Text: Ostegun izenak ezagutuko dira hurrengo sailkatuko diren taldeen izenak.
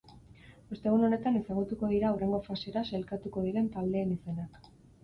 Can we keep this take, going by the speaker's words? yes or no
no